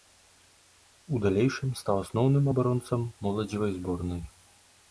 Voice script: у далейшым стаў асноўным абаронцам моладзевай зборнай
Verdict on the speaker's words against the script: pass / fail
pass